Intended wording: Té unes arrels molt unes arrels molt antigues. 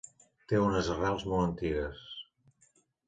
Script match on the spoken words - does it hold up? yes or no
no